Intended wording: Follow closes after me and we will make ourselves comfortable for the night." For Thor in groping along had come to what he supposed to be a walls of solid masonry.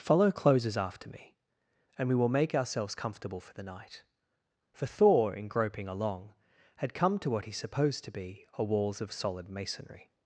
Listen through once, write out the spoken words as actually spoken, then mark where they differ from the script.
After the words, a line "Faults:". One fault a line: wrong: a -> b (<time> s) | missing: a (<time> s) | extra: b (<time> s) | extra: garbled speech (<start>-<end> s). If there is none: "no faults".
Follow closes after me and we will make ourselves comfortable for the night." For Thor in groping along had come to what he supposed to be a walls of solid masonry.
Faults:
no faults